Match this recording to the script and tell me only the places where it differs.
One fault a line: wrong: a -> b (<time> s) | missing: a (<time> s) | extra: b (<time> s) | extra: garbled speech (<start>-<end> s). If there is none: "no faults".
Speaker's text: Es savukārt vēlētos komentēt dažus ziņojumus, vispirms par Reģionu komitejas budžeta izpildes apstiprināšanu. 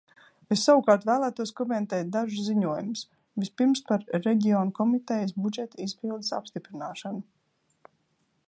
no faults